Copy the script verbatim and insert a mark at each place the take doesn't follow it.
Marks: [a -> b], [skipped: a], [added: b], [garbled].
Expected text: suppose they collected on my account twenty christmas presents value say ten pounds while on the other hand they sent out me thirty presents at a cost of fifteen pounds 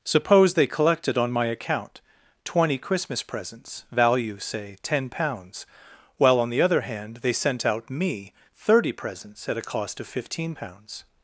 suppose they collected on my account twenty christmas presents value say ten pounds while on the other hand they sent out me thirty presents at a cost of fifteen pounds